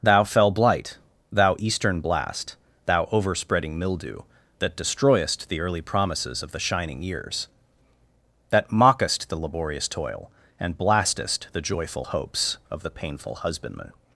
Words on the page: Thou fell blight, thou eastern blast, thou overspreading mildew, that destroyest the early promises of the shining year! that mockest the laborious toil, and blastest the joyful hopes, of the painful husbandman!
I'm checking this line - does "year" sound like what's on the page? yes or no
no